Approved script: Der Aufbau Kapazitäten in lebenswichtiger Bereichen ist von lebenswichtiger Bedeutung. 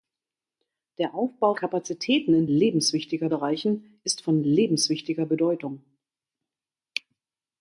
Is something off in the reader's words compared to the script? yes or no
no